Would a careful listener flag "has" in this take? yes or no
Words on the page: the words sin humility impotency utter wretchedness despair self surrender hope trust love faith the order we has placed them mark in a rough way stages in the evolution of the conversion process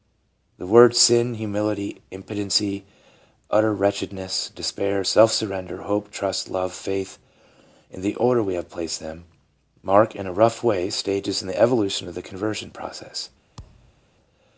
yes